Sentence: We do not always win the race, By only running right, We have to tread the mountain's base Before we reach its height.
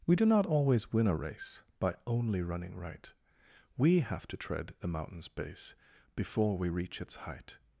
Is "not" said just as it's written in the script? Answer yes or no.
yes